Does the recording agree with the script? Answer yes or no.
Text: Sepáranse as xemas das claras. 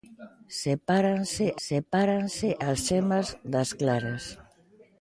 no